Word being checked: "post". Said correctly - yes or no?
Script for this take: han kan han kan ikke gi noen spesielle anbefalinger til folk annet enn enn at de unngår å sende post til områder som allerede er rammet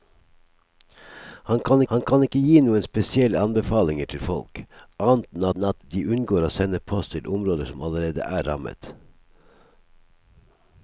yes